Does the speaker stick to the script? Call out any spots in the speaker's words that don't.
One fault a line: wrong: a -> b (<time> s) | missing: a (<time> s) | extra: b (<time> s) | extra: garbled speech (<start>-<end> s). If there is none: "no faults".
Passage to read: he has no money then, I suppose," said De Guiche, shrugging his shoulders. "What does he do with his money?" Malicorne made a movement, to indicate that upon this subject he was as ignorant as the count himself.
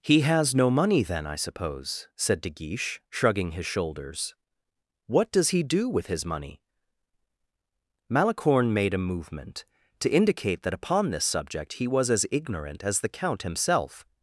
no faults